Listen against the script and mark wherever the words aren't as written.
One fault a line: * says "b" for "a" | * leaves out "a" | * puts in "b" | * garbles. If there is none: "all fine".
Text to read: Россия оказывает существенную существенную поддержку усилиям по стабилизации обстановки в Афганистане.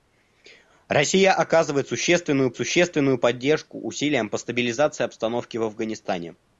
all fine